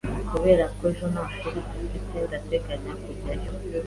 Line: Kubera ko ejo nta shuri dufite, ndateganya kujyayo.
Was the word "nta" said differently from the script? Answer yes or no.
no